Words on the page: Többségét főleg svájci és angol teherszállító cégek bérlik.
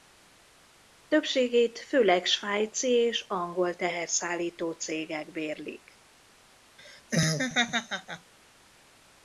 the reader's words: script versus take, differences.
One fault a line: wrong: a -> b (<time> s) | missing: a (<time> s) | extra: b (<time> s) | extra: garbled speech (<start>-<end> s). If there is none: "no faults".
no faults